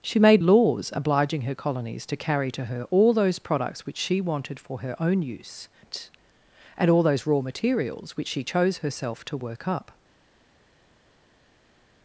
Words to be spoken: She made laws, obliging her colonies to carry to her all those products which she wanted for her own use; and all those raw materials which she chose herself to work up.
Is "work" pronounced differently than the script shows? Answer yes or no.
no